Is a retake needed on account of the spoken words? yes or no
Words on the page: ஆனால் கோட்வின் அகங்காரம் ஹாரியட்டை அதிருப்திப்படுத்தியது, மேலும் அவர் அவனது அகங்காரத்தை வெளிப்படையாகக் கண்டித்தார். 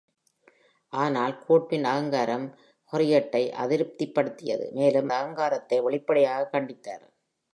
yes